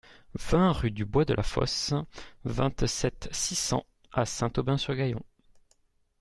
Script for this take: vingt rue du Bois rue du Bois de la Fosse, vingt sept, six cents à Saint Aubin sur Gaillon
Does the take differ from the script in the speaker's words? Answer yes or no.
yes